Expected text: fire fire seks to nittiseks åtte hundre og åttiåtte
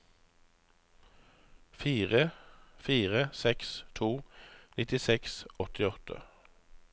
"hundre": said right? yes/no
no